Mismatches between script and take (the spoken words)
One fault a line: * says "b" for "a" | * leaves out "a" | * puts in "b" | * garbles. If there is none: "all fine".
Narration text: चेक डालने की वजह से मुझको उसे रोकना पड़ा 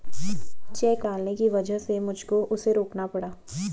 all fine